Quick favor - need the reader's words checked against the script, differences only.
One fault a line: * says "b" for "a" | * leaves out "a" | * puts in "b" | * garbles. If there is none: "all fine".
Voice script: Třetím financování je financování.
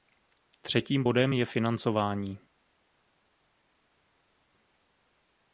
* says "bodem" for "financování"